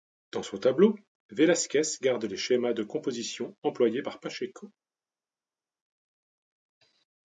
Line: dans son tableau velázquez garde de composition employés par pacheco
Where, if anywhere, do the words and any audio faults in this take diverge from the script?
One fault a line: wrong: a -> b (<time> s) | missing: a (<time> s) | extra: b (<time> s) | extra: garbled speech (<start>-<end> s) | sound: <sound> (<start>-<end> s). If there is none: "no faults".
extra: les schémas (2.2 s)